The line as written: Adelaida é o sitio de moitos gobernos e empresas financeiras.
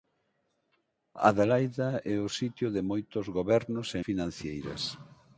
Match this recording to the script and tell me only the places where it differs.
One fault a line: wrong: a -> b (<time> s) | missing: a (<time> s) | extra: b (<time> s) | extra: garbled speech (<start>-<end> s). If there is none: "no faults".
missing: empresas (4.0 s)